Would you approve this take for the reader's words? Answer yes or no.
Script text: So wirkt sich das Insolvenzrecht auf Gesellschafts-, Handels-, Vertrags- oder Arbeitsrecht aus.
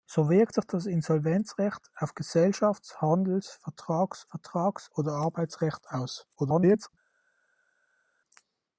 no